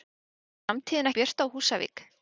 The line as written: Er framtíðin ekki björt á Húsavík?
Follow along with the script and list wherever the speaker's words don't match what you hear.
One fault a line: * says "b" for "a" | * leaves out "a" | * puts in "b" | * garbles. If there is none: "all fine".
* leaves out "ekki"